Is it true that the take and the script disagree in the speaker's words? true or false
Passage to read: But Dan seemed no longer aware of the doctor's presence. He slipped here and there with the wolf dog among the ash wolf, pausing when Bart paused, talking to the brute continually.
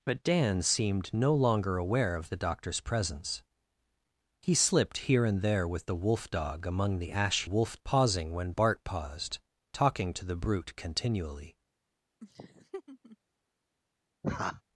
false